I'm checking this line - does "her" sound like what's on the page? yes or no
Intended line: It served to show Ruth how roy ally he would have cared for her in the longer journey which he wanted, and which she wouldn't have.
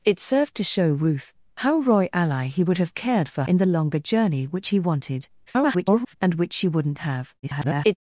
no